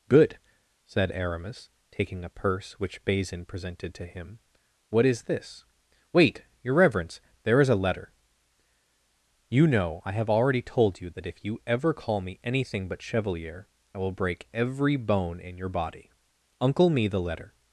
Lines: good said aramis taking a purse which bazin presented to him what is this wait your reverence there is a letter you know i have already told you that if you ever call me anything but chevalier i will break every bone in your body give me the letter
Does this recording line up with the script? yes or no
no